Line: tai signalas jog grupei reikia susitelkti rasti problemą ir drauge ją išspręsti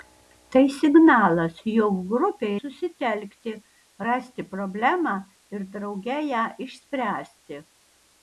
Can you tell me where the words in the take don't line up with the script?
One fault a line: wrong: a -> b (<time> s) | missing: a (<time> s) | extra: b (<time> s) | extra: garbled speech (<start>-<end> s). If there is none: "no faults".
missing: reikia (2.5 s)